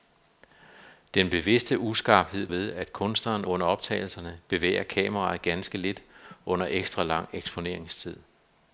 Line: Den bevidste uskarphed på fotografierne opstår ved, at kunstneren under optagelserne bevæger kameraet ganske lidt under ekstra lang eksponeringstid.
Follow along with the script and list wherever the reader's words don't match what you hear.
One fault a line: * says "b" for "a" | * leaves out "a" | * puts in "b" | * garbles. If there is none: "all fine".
* leaves out "på fotografierne opstår"